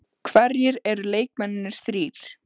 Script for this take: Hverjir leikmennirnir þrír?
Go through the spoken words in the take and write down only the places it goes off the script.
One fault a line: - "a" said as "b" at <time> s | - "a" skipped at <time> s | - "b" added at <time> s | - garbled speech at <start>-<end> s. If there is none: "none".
- "eru" added at 0.9 s